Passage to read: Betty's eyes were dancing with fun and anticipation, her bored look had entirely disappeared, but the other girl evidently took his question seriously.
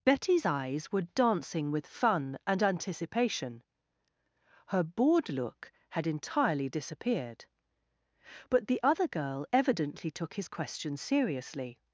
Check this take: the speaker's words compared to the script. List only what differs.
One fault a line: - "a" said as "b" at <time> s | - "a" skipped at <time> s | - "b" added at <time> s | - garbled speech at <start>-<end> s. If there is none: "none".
none